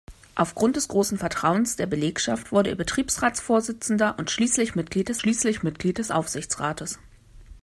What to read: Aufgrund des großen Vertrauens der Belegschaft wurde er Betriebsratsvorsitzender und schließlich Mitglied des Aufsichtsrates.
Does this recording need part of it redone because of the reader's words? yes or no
yes